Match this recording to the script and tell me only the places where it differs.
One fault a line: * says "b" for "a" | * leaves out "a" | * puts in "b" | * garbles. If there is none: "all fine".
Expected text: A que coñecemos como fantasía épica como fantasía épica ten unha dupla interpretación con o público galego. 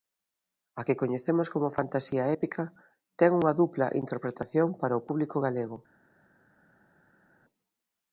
* leaves out "como fantasía épica"
* says "para" for "con"